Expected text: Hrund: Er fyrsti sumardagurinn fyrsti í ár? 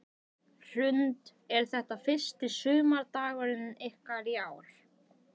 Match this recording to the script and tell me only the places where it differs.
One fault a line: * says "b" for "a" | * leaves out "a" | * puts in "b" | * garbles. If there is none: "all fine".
* puts in "þetta"
* says "ykkar" for "fyrsti"